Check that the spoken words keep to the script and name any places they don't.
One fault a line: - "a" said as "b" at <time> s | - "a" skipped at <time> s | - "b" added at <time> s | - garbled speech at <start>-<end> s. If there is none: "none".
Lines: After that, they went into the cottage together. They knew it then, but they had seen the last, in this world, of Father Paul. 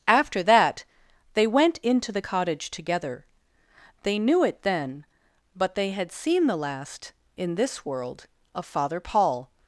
none